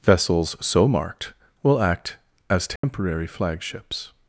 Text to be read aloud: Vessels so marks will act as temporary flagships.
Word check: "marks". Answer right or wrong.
wrong